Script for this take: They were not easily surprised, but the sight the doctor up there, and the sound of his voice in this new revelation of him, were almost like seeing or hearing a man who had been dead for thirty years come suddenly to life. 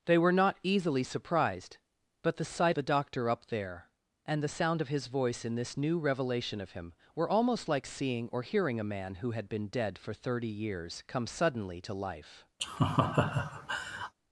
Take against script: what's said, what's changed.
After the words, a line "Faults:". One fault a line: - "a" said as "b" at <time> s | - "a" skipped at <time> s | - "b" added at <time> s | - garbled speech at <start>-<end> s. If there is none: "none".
They were not easily surprised, but the sight the doctor up there, and the sound of his voice in this new revelation of him, were almost like seeing or hearing a man who had been dead for thirty years come suddenly to life.
Faults:
none